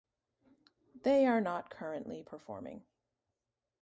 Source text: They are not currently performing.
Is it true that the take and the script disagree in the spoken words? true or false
false